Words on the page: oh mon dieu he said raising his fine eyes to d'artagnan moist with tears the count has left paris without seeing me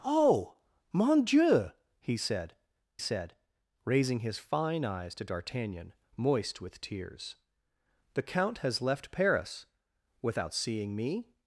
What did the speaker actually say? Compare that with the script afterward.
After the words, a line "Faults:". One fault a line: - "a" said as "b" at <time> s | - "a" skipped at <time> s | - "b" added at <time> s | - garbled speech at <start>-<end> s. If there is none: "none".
oh mon dieu he said said raising his fine eyes to d'artagnan moist with tears the count has left paris without seeing me
Faults:
- "said" added at 3.0 s